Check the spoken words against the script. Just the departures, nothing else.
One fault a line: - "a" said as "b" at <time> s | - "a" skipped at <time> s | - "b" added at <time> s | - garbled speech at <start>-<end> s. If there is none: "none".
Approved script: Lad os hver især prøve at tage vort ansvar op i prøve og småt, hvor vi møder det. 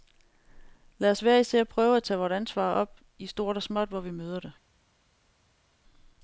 - "prøve" said as "stort" at 3.3 s